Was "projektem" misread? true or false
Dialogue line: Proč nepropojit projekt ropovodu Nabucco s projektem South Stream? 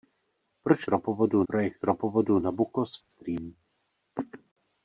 true